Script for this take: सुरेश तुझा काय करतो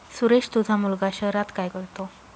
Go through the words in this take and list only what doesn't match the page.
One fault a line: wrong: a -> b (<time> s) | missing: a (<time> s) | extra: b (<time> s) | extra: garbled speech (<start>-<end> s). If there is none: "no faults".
extra: मुलगा शहरात (0.8 s)